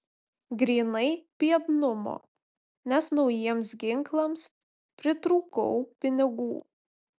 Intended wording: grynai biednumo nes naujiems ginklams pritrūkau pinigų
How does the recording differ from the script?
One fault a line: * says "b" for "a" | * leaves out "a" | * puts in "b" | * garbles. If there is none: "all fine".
all fine